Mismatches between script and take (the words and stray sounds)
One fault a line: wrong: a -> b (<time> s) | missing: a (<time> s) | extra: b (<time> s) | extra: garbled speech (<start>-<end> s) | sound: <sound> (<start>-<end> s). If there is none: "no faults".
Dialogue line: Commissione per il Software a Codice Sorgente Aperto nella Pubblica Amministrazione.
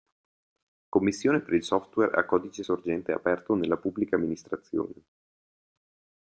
no faults